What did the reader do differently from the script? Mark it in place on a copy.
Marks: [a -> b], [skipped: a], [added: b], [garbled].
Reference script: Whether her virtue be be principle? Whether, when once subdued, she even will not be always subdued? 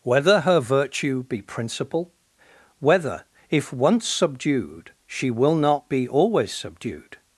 Whether her virtue be [skipped: be] principle? Whether, [when -> if] once subdued, she [skipped: even] will not be always subdued?